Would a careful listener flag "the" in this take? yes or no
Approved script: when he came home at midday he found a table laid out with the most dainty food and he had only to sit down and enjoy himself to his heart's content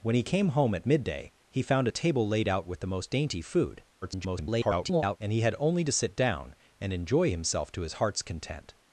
no